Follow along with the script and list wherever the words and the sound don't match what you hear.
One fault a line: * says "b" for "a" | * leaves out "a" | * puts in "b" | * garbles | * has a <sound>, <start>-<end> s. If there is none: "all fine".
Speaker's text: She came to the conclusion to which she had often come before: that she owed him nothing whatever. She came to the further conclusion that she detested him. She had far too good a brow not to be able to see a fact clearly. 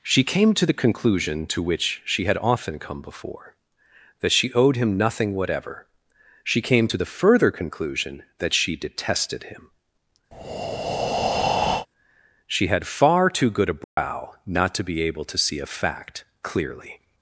* has a breath, 10.3-11.9 s
* has a dropout, 13.8-14.0 s